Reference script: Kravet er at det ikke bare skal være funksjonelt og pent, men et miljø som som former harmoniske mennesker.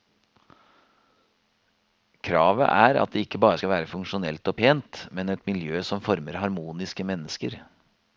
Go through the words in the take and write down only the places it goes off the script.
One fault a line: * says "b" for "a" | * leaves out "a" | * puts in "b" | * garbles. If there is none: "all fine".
* leaves out "som"